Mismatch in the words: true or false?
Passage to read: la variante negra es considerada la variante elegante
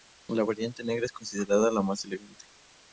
true